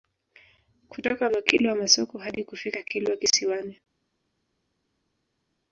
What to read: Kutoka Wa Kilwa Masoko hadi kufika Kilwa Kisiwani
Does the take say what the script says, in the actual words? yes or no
yes